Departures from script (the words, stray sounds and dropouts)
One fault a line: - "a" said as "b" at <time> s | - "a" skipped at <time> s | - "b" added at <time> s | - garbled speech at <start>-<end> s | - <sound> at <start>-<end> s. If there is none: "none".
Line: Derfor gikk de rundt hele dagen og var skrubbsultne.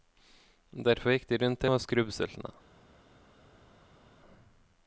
- "hele dagen" skipped at 1.7 s